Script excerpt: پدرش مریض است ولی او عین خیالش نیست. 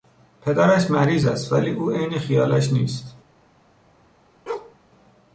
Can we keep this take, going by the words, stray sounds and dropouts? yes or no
no